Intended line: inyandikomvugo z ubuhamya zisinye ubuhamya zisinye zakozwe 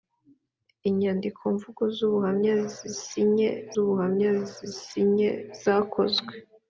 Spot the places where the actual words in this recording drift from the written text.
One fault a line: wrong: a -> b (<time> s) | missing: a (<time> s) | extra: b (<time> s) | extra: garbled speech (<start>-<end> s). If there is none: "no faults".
no faults